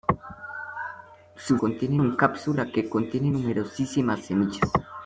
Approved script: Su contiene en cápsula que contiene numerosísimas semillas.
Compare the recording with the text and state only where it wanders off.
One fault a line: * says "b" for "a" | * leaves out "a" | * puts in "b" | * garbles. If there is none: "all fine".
all fine